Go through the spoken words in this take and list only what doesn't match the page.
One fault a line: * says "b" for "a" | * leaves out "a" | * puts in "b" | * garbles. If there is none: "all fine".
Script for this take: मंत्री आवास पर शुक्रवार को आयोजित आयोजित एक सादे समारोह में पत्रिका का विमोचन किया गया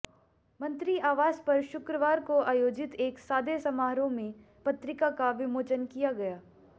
* leaves out "आयोजित"